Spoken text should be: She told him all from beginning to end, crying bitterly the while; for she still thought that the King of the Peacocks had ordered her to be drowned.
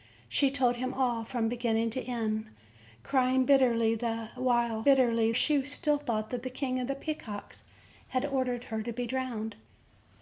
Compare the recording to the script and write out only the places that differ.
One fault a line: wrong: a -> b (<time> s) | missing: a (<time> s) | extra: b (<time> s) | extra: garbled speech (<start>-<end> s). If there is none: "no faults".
wrong: for -> bitterly (4.8 s)